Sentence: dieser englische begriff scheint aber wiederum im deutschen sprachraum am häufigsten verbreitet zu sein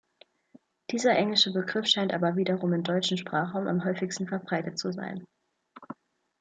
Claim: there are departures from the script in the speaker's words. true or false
false